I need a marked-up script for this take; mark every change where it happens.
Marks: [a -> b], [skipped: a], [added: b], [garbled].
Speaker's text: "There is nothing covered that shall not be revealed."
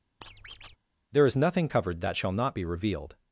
"There is nothing covered that shall not be revealed."